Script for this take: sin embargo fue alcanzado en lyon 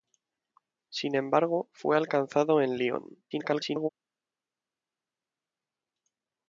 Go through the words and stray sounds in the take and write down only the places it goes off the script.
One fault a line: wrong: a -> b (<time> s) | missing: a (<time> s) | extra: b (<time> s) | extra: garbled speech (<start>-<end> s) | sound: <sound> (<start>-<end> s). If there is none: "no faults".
extra: garbled speech (3.3-3.9 s)